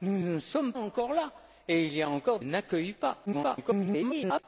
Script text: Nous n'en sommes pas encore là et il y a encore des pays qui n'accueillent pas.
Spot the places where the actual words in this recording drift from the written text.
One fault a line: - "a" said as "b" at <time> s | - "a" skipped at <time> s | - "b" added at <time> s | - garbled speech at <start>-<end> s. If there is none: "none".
- "pas" skipped at 0.7 s
- "des pays qui" skipped at 2.4 s
- garbled speech at 3.3-4.4 s